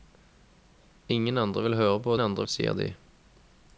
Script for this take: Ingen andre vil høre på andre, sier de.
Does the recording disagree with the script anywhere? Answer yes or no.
no